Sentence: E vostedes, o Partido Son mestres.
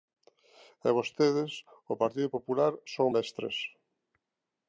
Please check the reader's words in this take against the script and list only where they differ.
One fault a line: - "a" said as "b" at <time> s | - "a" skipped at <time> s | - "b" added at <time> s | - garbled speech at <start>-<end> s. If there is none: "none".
- "Popular" added at 2.3 s